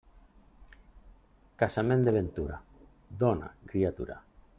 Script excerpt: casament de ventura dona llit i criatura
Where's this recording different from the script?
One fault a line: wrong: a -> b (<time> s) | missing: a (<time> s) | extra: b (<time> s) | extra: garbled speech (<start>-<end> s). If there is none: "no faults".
missing: llit (3.5 s)